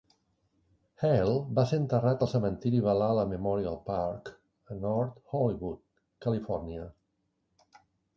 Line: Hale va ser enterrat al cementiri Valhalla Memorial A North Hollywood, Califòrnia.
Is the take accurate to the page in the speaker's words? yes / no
no